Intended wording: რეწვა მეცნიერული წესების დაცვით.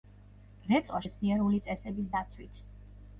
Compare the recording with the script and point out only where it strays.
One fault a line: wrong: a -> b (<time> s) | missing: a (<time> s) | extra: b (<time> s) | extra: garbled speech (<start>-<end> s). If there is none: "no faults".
no faults